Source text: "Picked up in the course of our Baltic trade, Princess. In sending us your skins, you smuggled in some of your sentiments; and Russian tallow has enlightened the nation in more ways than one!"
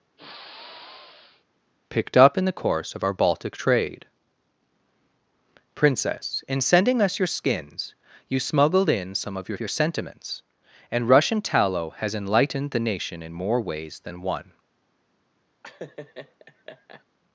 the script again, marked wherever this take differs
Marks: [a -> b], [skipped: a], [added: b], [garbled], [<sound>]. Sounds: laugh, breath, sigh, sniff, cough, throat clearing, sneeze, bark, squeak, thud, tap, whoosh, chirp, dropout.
[sigh] "Picked up in the course of our Baltic trade, Princess. In sending us your skins, you smuggled in some of your [added: your] sentiments; and Russian tallow has enlightened the nation in more ways than one!" [laugh]